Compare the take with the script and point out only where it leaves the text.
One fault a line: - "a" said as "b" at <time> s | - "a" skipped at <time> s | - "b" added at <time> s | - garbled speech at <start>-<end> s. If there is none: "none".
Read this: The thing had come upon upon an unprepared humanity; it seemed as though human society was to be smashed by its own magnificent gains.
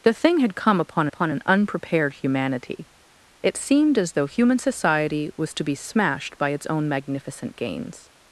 none